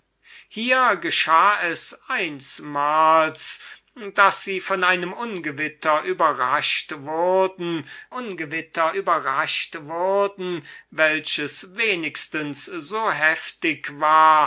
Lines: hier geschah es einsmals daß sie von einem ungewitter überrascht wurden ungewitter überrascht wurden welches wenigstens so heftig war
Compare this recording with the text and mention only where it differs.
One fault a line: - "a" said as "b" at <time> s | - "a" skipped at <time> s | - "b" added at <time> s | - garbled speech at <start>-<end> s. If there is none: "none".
none